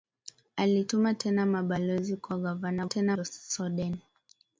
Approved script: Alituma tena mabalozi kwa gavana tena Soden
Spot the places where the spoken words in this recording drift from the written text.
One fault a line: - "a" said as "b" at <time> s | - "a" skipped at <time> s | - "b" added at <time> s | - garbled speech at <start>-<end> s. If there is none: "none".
none